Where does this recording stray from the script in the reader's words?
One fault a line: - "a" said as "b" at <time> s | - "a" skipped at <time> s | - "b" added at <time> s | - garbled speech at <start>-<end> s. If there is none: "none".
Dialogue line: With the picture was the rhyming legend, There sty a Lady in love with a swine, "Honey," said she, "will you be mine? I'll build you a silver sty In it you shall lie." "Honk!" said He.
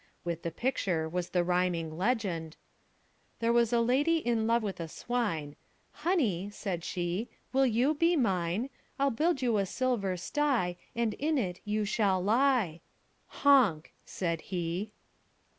- "sty" said as "was" at 3.5 s
- "And" added at 10.9 s